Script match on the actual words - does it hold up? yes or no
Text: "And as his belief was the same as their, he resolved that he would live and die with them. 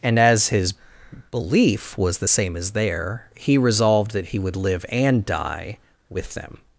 yes